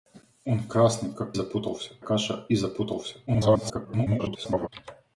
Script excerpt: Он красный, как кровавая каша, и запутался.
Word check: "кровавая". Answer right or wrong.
wrong